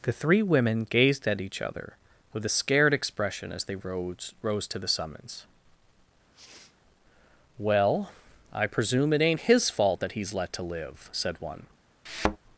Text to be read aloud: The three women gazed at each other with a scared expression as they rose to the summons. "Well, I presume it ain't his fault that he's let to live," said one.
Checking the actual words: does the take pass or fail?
fail